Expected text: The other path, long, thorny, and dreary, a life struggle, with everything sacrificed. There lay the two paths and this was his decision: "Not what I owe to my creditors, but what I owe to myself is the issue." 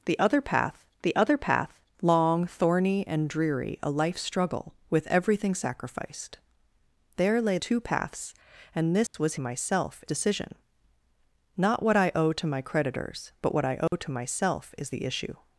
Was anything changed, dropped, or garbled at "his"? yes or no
yes